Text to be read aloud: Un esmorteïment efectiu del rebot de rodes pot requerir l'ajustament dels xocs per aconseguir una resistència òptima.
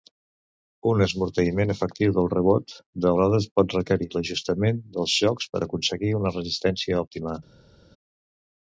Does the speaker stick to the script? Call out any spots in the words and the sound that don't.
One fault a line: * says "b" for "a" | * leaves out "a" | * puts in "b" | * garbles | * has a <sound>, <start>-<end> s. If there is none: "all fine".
all fine